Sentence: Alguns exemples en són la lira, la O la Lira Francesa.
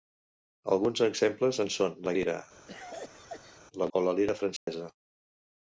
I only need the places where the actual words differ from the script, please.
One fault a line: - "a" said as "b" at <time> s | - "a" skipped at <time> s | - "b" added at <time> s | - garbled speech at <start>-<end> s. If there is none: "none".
none